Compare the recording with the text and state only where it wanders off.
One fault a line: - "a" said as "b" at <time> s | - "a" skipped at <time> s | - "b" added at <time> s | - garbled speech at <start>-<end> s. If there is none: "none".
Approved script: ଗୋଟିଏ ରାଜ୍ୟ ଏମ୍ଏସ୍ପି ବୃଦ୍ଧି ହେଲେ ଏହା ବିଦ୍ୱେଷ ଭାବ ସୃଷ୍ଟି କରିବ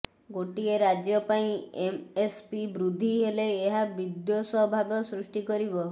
- "ପାଇଁ" added at 1.3 s